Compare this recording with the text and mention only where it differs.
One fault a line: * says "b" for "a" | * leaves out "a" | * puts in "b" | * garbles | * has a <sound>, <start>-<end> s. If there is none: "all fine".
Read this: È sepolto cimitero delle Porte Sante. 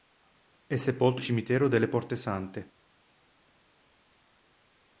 all fine